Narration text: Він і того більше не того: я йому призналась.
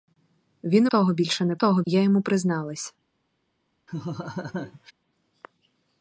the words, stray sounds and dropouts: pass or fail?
fail